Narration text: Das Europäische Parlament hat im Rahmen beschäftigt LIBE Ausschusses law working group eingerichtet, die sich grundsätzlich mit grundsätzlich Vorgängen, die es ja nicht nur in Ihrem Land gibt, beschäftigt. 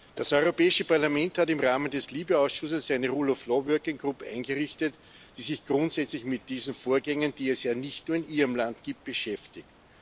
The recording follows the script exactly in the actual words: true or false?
false